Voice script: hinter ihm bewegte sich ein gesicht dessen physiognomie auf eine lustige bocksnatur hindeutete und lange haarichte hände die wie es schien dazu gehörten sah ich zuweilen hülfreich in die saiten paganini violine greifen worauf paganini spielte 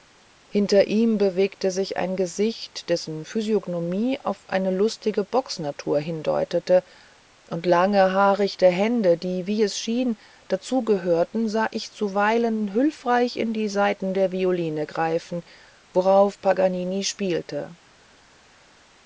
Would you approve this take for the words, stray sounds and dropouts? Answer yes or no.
no